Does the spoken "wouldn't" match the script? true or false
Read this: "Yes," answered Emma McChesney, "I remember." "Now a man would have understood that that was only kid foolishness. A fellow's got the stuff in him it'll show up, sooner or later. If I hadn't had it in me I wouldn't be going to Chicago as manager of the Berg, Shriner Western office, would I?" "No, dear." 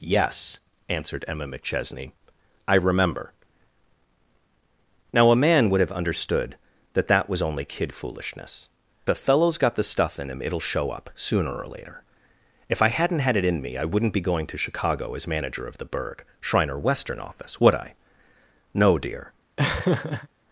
true